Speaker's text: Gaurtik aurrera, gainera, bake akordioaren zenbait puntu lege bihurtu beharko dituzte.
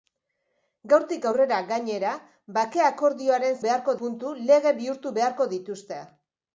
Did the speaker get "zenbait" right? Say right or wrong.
wrong